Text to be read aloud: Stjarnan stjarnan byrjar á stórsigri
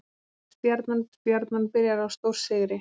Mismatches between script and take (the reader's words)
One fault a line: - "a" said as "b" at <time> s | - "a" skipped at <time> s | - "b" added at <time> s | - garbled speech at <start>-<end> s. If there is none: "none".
none